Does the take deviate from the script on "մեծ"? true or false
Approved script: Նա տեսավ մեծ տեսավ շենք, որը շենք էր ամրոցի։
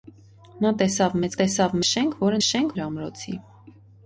false